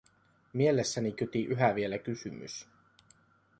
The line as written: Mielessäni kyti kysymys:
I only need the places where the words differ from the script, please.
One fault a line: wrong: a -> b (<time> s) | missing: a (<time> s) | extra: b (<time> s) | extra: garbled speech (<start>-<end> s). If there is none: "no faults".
extra: yhä vielä (1.4 s)